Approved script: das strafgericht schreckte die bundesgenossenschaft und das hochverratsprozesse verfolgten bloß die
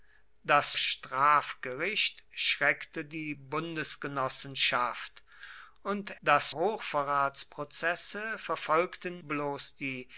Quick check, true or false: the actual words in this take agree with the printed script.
true